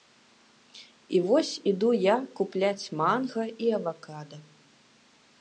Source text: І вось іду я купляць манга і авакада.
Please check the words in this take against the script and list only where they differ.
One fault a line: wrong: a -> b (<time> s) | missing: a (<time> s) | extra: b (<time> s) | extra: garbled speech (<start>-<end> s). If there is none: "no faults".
no faults